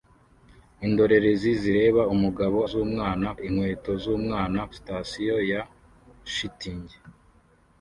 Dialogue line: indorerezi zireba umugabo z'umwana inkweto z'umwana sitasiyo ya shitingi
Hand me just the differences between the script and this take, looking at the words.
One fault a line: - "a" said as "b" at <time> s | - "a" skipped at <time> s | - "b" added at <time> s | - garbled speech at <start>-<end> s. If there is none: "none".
none